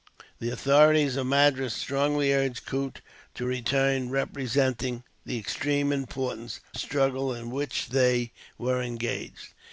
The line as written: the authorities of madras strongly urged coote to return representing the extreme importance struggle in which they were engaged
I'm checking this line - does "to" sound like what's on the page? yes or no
yes